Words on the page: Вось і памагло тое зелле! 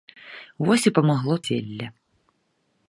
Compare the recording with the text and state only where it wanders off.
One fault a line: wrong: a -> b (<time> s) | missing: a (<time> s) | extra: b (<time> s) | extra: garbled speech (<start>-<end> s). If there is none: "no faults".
missing: тое (1.4 s)